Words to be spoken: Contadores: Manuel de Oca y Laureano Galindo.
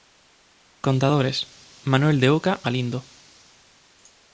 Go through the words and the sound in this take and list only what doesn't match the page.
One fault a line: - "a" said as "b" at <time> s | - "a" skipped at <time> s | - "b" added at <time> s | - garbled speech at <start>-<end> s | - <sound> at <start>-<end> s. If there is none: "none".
- "y Laureano" skipped at 2.6 s